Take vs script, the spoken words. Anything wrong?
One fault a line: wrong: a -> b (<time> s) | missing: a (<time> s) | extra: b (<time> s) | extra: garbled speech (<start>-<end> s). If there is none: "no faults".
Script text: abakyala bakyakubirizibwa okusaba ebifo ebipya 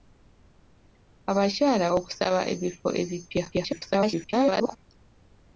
missing: bakyakubirizibwa (1.9 s)
extra: garbled speech (3.5-4.8 s)